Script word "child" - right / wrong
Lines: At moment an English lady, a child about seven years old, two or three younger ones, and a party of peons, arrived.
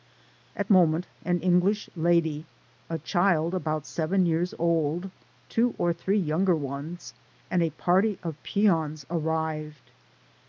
right